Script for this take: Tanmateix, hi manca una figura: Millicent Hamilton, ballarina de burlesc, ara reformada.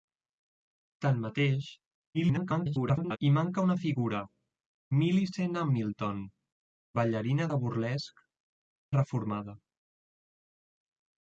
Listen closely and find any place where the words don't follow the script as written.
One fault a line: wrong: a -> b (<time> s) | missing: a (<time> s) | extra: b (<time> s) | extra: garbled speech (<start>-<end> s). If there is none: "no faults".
extra: garbled speech (2.1-3.2 s)
missing: ara (8.2 s)